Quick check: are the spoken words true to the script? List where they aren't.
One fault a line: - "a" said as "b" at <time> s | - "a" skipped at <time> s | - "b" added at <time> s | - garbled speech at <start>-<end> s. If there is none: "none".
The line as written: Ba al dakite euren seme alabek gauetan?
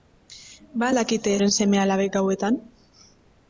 none